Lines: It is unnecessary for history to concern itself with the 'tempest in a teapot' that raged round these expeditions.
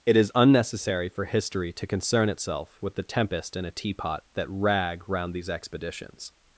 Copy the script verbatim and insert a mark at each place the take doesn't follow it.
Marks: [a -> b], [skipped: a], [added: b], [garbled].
It is unnecessary for history to concern itself with the 'tempest in a teapot' that [raged -> rag] round these expeditions.